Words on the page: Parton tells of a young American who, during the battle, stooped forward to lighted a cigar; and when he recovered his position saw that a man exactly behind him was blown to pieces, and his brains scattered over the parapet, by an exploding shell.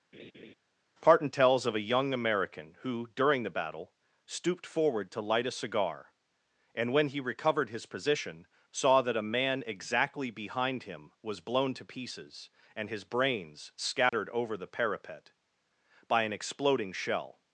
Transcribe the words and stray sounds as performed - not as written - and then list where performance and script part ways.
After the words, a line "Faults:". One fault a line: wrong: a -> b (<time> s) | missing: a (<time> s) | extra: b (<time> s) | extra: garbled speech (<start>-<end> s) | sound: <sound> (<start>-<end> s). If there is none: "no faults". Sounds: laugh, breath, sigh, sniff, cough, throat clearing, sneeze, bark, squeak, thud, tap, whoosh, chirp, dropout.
Parton tells of a young American who, during the battle, stooped forward to light a cigar; and when he recovered his position saw that a man exactly behind him was blown to pieces, and his brains scattered over the parapet, by an exploding shell.
Faults:
sound: laugh (0.1-0.5 s)
wrong: lighted -> light (5.2 s)
sound: dropout (14.1-14.1 s)